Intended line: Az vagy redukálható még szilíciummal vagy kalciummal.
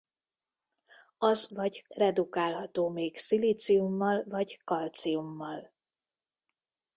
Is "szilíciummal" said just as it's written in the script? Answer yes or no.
yes